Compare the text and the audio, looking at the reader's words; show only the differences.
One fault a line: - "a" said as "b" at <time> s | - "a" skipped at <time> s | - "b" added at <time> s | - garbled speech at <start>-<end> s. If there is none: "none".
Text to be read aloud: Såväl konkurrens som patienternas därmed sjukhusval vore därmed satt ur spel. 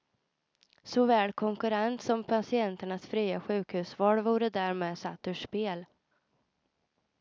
- "därmed" said as "fria" at 3.1 s